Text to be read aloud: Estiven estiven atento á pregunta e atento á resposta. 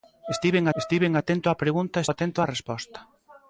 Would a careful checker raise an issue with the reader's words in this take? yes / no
no